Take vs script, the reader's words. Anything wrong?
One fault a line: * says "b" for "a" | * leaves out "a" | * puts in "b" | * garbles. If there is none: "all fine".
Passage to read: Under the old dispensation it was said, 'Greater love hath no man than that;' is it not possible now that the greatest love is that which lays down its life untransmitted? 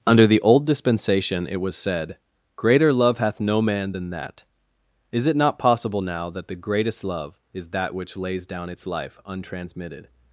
all fine